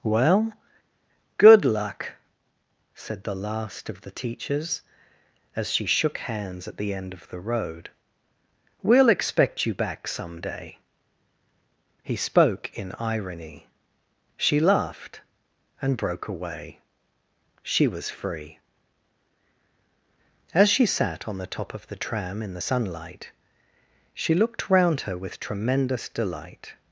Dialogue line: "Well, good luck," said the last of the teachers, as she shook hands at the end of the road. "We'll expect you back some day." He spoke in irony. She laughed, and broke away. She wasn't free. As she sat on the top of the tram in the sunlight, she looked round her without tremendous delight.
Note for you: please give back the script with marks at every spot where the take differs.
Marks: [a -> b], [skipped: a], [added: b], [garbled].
"Well, good luck," said the last of the teachers, as she shook hands at the end of the road. "We'll expect you back some day." He spoke in irony. She laughed, and broke away. She [wasn't -> was] free. As she sat on the top of the tram in the sunlight, she looked round her [without -> with] tremendous delight.